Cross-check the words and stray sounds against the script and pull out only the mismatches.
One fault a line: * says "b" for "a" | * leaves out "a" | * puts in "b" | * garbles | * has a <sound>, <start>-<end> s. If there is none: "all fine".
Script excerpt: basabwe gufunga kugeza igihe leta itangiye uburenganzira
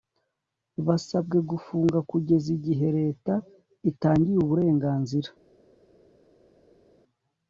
all fine